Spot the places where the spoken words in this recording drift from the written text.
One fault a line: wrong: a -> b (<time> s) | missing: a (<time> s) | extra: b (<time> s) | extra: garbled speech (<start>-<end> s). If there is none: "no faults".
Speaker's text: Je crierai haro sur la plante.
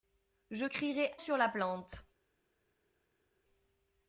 missing: haro (1.1 s)